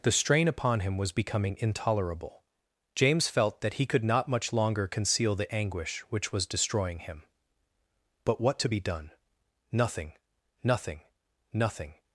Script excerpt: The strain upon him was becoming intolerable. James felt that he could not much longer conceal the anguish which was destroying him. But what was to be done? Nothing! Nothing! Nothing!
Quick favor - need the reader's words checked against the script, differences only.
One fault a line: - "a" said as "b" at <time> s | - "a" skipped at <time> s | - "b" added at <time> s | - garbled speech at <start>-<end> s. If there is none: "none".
- "was" skipped at 8.6 s